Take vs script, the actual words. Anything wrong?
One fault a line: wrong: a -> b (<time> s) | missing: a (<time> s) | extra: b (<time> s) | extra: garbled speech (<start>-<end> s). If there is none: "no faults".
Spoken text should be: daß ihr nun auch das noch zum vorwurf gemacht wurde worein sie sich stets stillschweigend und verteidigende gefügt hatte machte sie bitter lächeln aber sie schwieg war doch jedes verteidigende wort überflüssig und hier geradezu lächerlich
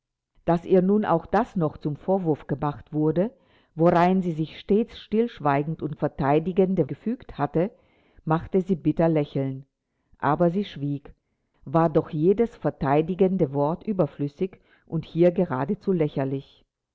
no faults